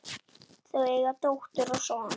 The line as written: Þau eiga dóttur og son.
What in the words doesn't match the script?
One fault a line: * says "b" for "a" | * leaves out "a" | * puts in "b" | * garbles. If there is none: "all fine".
all fine